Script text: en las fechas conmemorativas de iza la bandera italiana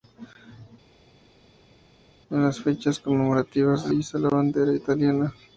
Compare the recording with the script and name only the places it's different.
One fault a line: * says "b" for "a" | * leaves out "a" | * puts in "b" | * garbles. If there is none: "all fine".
all fine